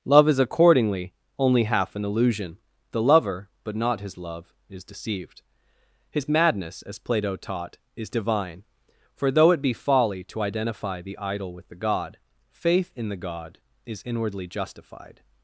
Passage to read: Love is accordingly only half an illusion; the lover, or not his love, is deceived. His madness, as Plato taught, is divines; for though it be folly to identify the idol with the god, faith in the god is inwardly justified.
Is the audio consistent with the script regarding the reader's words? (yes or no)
no